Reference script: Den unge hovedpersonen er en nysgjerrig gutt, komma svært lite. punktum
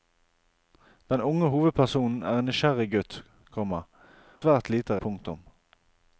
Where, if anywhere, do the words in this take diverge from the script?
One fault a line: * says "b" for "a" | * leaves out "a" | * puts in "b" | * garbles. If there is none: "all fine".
all fine